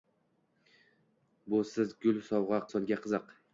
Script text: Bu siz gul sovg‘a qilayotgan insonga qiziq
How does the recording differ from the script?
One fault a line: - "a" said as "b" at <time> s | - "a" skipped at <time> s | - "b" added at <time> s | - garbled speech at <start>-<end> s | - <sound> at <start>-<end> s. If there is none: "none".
- "qilayotgan" skipped at 2.6 s